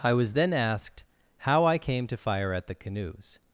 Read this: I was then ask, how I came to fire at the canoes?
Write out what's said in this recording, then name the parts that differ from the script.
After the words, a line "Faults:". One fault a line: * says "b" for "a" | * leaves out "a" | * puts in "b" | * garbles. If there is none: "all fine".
I was then asked, how I came to fire at the canoes?
Faults:
* says "asked" for "ask"